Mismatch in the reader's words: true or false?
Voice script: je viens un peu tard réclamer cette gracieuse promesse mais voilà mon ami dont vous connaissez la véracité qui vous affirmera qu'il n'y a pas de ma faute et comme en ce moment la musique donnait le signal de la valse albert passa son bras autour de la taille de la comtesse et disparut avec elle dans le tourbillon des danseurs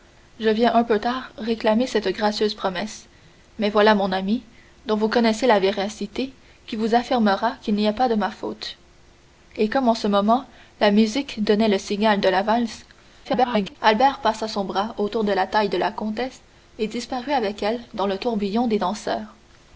true